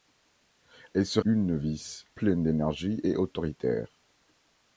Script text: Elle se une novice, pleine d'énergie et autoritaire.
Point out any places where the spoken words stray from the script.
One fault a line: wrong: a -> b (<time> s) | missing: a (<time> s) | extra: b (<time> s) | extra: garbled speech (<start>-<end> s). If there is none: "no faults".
no faults